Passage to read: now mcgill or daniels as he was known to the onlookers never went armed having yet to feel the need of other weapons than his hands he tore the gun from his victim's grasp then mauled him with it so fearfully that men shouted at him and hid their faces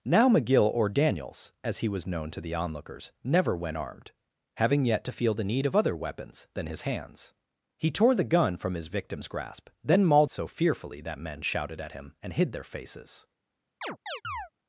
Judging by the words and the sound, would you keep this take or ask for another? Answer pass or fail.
fail